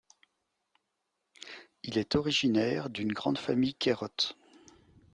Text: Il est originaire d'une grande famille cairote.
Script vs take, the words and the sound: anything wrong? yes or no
no